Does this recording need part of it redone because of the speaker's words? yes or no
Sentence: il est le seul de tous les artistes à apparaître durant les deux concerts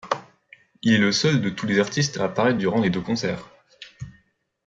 no